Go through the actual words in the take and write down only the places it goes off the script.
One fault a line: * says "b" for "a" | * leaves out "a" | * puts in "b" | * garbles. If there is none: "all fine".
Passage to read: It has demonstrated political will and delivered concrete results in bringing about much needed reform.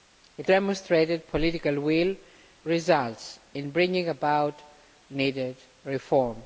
* leaves out "has"
* leaves out "and delivered concrete"
* leaves out "much"